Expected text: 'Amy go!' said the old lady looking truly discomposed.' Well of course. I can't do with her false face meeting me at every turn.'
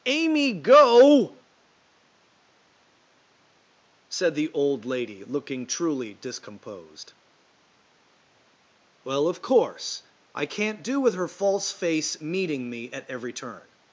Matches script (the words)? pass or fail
pass